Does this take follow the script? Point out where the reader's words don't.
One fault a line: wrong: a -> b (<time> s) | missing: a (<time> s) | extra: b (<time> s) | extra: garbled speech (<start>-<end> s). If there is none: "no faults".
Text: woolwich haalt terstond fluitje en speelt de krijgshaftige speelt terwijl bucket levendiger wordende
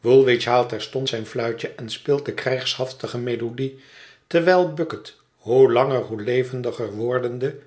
extra: zijn (1.1 s)
wrong: speelt -> melodie (3.2 s)
extra: hoe langer hoe (5.4 s)